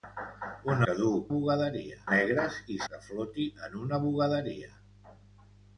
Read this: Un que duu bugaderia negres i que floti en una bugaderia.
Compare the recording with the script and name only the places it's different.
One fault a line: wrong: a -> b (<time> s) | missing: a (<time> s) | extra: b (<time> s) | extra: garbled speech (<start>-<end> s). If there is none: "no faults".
no faults